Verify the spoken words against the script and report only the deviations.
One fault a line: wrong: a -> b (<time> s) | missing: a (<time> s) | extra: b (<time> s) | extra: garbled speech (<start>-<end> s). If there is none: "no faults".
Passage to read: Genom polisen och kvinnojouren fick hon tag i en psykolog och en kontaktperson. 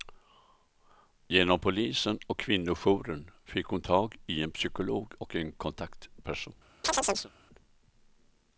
no faults